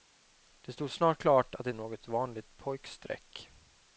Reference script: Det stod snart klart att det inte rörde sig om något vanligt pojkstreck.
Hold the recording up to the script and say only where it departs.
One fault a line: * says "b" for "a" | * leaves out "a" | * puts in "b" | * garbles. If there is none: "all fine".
* leaves out "inte rörde sig"